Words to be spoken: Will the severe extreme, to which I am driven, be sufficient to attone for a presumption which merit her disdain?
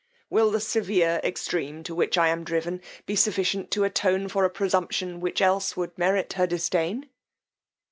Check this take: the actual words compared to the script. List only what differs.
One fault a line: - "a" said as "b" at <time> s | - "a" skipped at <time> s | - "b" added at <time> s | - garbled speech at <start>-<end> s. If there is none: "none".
- "else would" added at 5.4 s